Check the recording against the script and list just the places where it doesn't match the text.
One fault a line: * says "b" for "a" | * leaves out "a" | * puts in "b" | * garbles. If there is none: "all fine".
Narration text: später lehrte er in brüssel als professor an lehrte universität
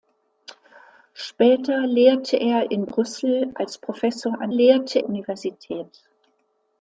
all fine